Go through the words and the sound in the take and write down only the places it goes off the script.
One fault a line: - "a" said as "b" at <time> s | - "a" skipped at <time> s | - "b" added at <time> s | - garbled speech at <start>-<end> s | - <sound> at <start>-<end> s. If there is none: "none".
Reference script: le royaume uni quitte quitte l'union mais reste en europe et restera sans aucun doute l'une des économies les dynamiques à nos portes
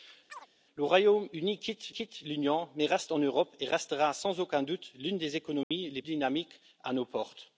- chirp at 0.3-0.5 s
- dropout at 5.6-5.7 s